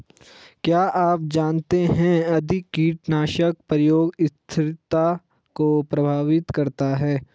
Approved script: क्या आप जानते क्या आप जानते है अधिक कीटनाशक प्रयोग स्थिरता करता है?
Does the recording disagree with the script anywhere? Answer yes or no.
yes